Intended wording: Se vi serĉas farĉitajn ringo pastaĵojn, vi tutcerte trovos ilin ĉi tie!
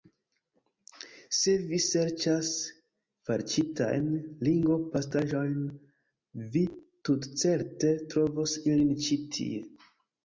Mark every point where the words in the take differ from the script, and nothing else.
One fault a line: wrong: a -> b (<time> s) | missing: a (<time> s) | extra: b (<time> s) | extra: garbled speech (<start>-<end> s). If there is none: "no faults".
no faults